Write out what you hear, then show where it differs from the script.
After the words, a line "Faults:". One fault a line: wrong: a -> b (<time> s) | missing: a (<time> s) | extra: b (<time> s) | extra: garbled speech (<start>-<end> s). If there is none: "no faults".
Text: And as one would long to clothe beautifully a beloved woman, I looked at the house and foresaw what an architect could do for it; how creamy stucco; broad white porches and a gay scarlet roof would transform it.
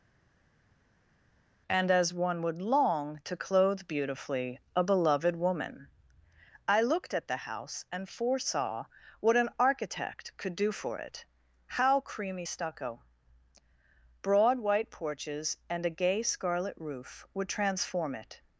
And as one would long to clothe beautifully a beloved woman, I looked at the house and foresaw what an architect could do for it; how creamy stucco; broad white porches and a gay scarlet roof would transform it.
Faults:
no faults